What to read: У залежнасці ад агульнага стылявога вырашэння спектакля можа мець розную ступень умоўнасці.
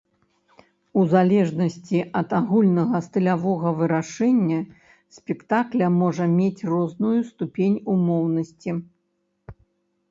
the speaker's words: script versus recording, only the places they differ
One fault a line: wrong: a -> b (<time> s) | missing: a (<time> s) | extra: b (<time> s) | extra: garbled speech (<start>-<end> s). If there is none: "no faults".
no faults